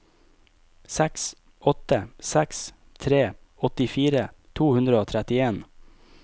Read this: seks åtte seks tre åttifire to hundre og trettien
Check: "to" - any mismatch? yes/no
no